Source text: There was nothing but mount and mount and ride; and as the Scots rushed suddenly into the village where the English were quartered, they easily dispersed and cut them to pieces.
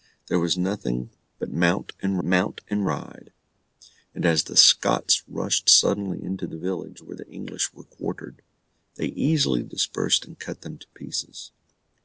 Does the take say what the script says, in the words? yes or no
yes